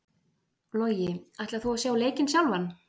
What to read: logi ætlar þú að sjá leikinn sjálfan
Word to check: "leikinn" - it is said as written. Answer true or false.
true